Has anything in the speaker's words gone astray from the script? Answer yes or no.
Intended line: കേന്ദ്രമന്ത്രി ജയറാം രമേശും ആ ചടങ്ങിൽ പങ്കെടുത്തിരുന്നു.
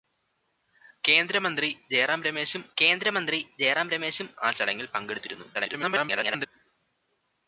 yes